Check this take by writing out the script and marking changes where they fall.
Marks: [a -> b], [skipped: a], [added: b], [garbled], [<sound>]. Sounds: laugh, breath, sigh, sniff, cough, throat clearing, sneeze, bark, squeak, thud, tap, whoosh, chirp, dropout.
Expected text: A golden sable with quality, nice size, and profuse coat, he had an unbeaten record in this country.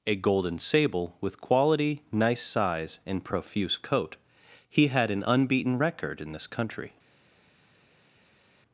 A golden sable with quality, nice size, and profuse coat, he had an unbeaten record in this country.